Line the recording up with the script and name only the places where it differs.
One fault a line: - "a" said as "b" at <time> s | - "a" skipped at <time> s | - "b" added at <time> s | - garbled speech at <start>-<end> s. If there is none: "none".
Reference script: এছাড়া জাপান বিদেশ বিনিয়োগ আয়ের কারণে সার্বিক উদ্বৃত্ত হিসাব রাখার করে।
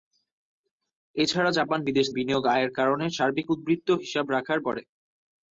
none